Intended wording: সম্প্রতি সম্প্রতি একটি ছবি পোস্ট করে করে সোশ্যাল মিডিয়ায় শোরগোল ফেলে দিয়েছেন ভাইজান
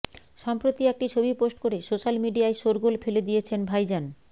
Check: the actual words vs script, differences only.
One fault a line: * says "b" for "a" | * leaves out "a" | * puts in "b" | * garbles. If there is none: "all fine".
* leaves out "সম্প্রতি"
* leaves out "করে"